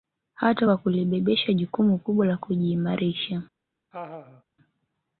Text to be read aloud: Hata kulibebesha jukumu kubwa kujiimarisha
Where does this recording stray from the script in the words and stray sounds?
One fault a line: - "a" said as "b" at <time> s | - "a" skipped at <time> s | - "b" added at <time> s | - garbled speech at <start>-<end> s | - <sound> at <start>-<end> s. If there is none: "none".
- "kwa" added at 0.6 s
- "la" added at 2.2 s
- laugh at 3.9-4.4 s